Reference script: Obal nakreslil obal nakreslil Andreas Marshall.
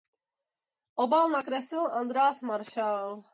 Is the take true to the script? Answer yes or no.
no